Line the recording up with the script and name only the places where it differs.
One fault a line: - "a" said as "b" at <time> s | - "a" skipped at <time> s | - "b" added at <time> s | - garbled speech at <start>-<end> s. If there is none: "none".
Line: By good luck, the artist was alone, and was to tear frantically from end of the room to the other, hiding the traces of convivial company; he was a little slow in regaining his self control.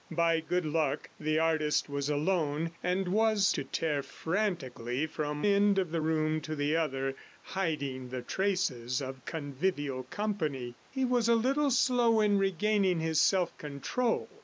none